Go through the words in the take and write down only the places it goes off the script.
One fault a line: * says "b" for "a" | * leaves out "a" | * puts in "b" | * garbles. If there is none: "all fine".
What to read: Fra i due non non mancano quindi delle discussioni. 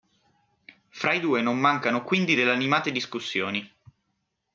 * leaves out "non"
* puts in "animate"